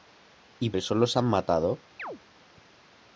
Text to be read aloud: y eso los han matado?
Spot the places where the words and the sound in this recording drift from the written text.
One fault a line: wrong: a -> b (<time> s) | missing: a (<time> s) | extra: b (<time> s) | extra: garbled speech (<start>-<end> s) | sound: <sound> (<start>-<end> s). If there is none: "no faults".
sound: chirp (2.0-2.2 s)